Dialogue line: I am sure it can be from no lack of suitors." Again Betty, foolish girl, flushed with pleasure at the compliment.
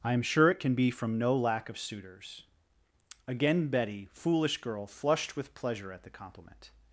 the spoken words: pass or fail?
pass